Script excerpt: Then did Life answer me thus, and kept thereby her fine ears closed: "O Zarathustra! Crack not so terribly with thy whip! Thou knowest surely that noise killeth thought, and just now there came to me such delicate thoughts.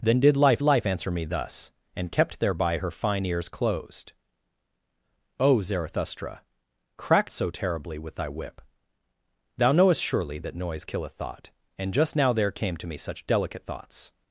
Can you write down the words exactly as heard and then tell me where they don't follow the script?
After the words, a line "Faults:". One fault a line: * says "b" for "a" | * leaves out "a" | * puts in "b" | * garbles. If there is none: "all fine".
Then did Life Life answer me thus, and kept thereby her fine ears closed: "O Zarathustra! Crack so terribly with thy whip! Thou knowest surely that noise killeth thought, and just now there came to me such delicate thoughts.
Faults:
* puts in "Life"
* leaves out "not"